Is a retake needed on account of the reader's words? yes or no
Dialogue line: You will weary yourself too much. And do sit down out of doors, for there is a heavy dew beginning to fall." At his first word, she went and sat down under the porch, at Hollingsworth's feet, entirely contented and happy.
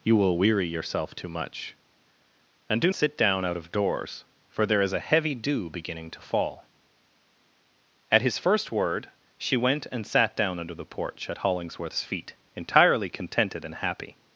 no